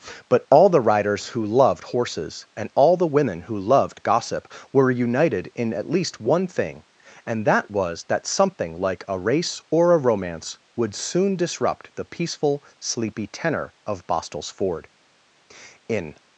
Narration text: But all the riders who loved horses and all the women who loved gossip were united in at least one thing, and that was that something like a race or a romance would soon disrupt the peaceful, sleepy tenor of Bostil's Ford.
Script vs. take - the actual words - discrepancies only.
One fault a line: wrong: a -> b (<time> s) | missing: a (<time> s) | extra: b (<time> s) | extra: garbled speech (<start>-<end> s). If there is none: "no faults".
extra: In (15.9 s)